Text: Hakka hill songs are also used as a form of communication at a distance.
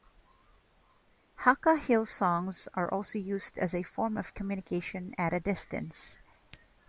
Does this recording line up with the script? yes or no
yes